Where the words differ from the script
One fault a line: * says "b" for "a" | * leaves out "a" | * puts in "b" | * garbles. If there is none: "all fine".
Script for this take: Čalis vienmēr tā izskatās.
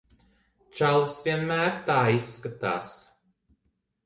all fine